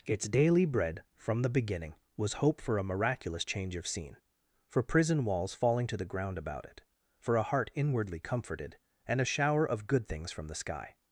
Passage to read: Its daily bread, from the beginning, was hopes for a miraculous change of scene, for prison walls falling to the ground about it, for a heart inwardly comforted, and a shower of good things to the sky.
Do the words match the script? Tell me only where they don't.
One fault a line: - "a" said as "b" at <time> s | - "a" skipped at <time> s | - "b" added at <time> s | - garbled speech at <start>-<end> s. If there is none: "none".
- "hopes" said as "hope" at 2.3 s
- "to" said as "from" at 10.3 s